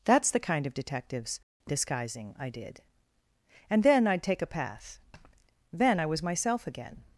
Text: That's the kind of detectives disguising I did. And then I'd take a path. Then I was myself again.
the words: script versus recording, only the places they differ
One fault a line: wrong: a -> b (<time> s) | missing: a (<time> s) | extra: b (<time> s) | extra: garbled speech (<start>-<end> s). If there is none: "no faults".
no faults